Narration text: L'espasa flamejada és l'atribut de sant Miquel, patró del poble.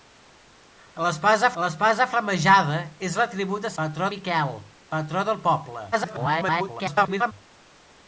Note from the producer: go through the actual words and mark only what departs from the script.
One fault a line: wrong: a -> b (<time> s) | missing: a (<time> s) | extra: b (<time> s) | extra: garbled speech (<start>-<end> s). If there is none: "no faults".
extra: l'espasa (1.6 s)
wrong: sant -> patró (3.8 s)
extra: garbled speech (5.9-7.3 s)